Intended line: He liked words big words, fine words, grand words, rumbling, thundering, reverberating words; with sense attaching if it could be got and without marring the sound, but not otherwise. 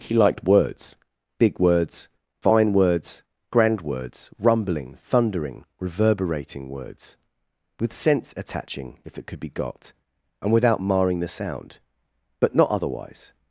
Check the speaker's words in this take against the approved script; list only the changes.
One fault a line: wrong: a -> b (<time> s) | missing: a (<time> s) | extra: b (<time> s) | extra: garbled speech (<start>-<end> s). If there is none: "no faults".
no faults